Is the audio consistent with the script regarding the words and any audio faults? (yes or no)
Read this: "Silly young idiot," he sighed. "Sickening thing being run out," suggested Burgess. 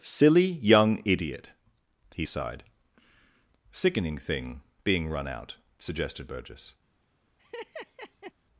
no